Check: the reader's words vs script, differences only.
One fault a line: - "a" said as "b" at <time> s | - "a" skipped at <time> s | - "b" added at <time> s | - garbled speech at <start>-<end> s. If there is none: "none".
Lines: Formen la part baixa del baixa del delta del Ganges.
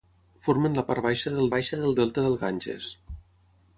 none